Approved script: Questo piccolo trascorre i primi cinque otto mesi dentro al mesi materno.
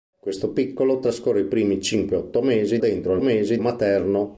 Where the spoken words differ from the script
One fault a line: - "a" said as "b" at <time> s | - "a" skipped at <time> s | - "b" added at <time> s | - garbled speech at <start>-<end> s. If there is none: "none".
none